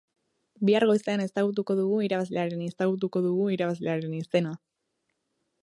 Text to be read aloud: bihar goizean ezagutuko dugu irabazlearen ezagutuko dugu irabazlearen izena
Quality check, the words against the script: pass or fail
pass